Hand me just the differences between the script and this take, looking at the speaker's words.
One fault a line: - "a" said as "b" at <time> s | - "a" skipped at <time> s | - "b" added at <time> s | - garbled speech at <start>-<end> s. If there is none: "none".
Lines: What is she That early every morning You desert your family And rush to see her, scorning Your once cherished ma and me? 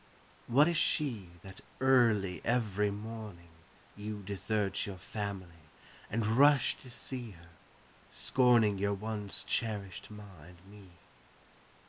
none